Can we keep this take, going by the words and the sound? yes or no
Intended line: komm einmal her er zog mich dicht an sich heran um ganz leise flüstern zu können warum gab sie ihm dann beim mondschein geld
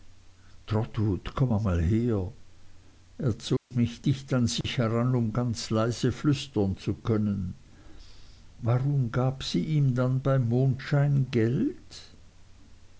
no